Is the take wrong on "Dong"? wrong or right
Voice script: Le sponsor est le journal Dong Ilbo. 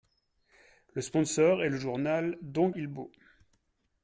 right